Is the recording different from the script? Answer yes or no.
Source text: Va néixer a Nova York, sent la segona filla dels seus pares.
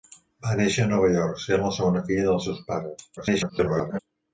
yes